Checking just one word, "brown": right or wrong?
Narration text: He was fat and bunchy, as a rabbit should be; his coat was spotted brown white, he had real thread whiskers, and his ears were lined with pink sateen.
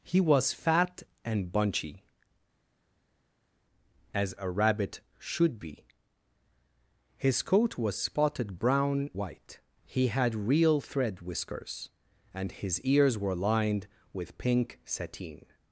right